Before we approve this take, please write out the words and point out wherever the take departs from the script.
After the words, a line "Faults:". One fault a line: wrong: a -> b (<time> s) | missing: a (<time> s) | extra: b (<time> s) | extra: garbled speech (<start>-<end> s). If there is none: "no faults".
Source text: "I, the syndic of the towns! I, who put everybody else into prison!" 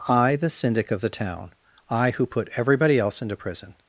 "I, the syndic of the town! I, who put everybody else into prison!"
Faults:
wrong: towns -> town (1.1 s)